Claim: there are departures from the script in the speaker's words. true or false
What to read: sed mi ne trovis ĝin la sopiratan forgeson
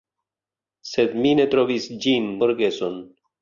true